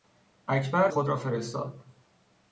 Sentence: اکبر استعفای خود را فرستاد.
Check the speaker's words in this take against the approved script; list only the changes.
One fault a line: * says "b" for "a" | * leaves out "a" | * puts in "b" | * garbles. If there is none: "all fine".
* leaves out "استعفای"